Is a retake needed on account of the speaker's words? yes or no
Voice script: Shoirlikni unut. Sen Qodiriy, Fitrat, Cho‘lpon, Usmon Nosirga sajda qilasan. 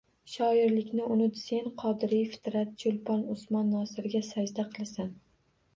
no